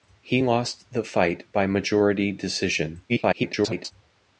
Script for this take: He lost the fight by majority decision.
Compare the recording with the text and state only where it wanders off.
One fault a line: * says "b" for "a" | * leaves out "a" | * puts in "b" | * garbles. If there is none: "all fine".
* garbles